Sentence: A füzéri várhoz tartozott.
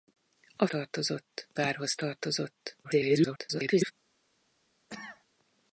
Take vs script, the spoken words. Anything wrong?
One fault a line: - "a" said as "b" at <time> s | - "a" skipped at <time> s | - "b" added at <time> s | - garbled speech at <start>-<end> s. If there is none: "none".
- "füzéri" said as "tartozott" at 0.7 s
- garbled speech at 2.8-3.9 s